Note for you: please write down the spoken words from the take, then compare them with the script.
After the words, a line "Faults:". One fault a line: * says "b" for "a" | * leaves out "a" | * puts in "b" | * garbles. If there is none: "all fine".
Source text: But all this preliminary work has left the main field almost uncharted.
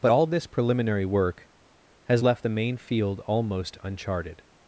But all this preliminary work has left the main field almost uncharted.
Faults:
all fine